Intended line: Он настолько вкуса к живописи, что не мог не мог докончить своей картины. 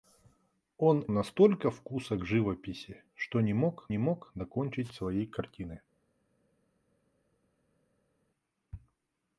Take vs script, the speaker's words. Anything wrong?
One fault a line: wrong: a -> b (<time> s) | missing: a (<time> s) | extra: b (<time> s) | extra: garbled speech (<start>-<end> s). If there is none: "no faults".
no faults